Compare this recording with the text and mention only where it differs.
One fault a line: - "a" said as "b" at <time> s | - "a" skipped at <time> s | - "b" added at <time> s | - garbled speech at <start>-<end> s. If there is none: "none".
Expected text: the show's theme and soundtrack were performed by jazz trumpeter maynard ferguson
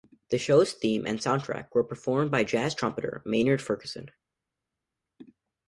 none